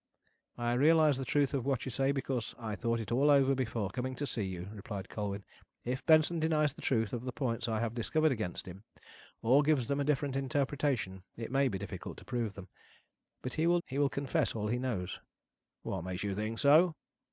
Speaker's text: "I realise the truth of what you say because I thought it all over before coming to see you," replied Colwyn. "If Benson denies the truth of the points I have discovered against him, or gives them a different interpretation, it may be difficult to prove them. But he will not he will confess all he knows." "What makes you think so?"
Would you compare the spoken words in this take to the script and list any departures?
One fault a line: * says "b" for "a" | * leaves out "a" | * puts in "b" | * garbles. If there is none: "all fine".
* leaves out "not"